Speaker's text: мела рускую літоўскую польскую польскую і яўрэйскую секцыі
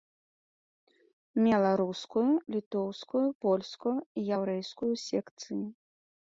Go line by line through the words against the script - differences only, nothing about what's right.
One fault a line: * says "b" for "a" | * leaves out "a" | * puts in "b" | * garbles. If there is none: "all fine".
* leaves out "польскую"